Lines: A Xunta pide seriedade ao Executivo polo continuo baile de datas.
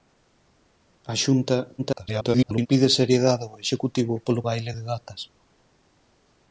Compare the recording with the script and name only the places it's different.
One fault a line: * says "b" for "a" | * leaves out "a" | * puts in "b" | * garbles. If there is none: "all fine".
* garbles
* leaves out "continuo"